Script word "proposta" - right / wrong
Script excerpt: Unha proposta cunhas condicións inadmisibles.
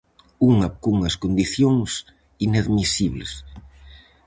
wrong